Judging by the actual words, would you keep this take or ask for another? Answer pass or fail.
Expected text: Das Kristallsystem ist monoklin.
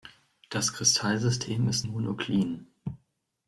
pass